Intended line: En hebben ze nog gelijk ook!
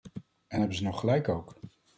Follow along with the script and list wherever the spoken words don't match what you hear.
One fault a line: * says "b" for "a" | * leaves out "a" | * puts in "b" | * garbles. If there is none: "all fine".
all fine